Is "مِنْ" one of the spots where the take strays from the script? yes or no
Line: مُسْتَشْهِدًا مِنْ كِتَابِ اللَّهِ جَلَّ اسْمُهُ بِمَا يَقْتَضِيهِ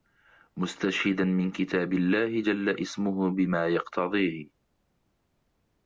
no